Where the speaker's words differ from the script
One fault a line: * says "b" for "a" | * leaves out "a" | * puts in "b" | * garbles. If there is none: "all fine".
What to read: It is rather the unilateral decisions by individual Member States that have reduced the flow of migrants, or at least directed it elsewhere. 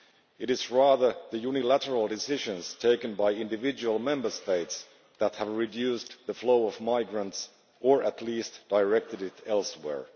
* puts in "taken"